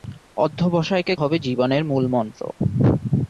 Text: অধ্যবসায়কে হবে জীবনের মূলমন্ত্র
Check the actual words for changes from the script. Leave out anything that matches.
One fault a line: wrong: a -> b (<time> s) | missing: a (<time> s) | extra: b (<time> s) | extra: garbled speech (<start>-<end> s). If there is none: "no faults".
no faults